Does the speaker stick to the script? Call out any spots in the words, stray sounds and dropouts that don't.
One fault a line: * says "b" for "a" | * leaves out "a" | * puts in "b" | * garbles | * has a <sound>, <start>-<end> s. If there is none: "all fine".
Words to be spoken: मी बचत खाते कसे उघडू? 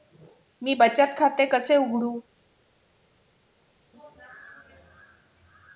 all fine